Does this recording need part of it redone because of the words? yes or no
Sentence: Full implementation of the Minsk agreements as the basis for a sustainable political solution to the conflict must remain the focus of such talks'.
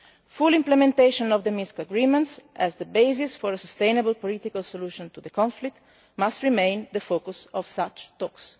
no